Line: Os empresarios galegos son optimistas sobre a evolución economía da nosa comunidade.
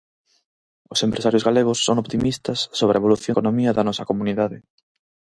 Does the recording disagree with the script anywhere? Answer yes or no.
no